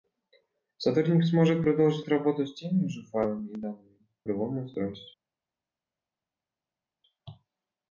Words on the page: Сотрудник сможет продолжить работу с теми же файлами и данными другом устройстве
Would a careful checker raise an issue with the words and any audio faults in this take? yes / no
no